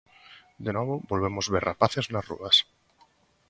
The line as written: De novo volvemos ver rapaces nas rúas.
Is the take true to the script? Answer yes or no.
yes